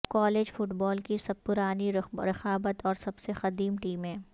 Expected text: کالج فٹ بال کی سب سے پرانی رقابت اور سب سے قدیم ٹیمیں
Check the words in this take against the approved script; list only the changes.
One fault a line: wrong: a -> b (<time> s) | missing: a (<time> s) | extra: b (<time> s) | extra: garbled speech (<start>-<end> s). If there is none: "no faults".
missing: سے (1.4 s)